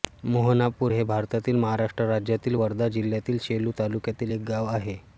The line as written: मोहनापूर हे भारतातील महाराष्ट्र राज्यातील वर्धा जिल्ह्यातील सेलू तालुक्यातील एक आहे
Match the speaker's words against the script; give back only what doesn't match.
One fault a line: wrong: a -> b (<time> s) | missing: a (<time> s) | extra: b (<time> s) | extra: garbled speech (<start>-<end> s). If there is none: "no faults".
extra: गाव (4.5 s)